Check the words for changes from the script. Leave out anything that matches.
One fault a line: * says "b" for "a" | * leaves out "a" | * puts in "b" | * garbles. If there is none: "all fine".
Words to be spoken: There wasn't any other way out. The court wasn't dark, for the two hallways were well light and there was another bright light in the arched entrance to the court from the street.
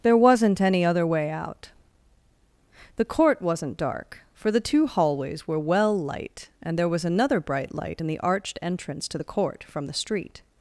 all fine